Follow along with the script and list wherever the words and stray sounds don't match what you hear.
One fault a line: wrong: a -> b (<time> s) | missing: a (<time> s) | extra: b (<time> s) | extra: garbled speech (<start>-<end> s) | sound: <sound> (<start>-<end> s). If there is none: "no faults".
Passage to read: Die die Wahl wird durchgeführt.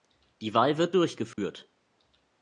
missing: die (0.6 s)
sound: dropout (1.3-1.4 s)